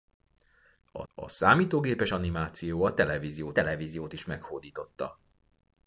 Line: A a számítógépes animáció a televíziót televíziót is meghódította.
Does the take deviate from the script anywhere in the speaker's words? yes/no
no